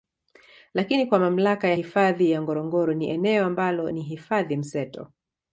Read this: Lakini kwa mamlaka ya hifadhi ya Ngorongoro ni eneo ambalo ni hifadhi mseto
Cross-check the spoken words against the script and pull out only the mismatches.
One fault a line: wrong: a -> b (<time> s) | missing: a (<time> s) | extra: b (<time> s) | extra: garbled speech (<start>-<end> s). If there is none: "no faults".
no faults